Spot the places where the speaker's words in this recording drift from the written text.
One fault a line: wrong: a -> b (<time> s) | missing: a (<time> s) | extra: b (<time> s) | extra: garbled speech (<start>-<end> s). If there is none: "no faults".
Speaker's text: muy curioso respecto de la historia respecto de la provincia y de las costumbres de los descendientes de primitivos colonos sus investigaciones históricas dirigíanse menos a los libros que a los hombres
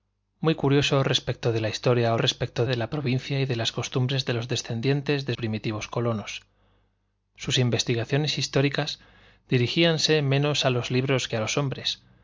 no faults